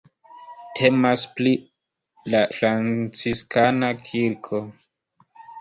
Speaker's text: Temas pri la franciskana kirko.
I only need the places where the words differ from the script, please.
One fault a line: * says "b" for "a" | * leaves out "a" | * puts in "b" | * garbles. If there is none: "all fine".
all fine